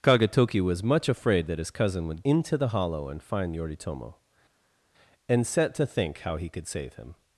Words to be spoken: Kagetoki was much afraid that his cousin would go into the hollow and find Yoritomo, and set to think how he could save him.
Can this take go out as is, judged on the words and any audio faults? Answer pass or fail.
fail